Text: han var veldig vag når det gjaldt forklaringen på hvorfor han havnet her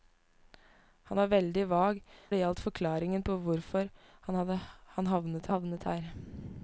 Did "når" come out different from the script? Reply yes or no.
yes